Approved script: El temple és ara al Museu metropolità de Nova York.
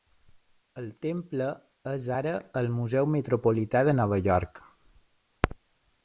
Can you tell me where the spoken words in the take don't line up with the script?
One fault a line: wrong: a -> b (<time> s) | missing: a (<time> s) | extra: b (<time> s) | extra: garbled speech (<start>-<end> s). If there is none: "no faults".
no faults